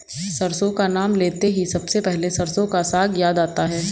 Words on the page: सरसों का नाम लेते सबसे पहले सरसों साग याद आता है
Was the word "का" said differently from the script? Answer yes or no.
no